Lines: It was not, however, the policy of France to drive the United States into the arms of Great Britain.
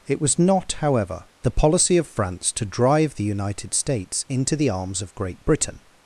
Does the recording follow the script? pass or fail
pass